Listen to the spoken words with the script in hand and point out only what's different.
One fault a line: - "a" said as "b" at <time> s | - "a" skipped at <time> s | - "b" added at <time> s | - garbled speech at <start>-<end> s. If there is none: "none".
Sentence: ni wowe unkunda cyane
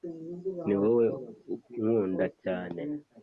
none